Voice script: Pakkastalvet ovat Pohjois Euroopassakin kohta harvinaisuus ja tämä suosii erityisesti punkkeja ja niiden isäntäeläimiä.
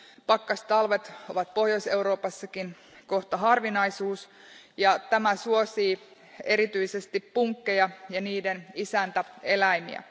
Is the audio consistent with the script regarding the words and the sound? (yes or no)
yes